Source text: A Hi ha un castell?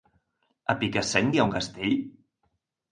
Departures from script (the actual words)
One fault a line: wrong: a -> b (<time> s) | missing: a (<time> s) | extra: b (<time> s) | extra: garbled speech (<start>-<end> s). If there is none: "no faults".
extra: Picassent (0.8 s)